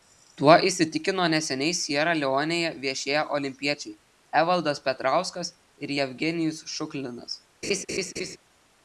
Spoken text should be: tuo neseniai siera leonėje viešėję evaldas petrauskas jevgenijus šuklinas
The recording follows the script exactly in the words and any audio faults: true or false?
false